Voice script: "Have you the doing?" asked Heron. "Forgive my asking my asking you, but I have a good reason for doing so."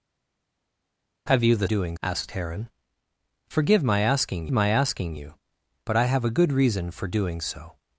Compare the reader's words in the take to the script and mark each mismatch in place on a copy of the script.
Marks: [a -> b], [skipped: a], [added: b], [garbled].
"Have you the doing?" asked Heron. "Forgive my asking my asking you, but I have a good reason for doing so."